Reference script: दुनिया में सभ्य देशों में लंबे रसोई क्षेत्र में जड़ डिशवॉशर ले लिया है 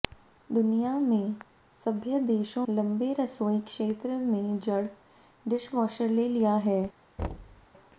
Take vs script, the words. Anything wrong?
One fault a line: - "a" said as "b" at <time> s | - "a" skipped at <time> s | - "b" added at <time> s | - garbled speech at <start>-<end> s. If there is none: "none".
- "में" skipped at 2.6 s